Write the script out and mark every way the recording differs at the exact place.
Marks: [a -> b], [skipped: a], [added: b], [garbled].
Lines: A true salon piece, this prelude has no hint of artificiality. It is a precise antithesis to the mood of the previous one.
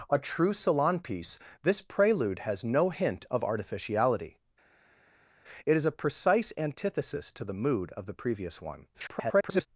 A true salon piece, this prelude has no hint of artificiality. It is a precise antithesis to the mood of the previous one. [garbled]